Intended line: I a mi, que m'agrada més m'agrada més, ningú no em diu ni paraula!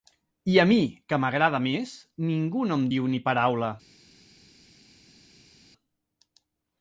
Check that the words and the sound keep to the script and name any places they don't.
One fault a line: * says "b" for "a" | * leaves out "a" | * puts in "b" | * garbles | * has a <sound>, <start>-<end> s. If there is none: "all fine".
* leaves out "m'agrada més"